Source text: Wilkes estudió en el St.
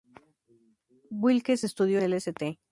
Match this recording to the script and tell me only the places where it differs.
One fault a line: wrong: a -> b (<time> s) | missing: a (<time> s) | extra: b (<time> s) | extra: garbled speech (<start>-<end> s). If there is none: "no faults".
missing: en (2.0 s)